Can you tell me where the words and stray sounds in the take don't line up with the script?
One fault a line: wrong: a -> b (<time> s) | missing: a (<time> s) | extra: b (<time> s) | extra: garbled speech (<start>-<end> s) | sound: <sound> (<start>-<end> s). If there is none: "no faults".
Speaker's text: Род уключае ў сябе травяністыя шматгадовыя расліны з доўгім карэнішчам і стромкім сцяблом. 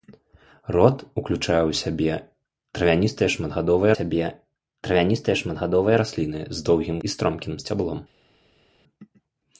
extra: сябе травяністыя шматгадовыя (3.9 s)
missing: карэнішчам (7.0 s)